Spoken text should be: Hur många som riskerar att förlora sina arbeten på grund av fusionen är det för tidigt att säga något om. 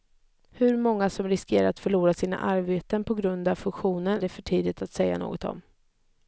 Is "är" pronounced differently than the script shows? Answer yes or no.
yes